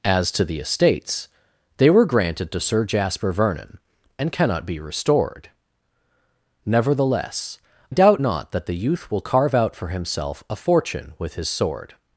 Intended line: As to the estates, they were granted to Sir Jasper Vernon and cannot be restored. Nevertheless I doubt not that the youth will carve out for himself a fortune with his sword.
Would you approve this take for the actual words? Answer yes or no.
no